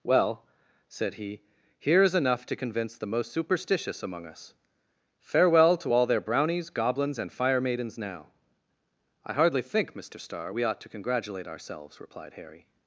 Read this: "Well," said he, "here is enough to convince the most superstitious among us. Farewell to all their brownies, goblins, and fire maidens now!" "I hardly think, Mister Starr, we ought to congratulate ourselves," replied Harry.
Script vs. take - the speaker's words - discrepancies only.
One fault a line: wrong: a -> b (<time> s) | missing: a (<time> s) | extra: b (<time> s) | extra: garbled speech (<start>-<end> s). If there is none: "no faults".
no faults